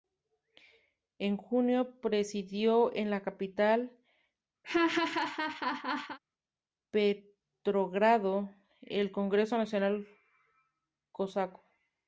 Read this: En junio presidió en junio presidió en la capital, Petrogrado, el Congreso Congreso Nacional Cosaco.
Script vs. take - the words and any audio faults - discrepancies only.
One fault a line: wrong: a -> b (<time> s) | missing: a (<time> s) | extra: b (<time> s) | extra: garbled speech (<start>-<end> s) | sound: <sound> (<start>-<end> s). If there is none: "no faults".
missing: junio presidió en (3.1 s)
sound: laugh (4.6-6.2 s)
missing: Congreso (9.6 s)